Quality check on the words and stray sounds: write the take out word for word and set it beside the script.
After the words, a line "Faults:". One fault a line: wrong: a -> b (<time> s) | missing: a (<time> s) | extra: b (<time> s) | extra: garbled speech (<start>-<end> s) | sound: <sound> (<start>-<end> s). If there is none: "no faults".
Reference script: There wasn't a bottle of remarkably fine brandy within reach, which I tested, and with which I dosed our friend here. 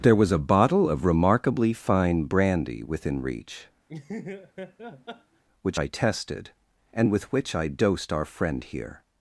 There was a bottle of remarkably fine brandy within reach, which I tested, and with which I dosed our friend here.
Faults:
wrong: wasn't -> was (0.1 s)
sound: laugh (3.9-5.4 s)